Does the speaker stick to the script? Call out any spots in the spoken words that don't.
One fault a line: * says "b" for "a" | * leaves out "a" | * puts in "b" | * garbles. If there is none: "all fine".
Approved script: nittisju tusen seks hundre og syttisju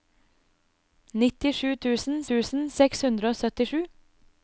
* puts in "tusen"